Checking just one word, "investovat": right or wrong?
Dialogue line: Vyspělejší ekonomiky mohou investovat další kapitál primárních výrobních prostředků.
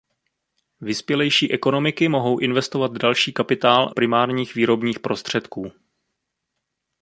right